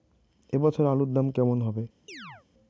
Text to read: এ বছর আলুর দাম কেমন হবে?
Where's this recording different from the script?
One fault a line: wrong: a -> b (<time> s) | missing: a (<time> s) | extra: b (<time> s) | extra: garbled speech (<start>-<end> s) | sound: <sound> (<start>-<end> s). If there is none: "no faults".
sound: chirp (2.1-2.5 s)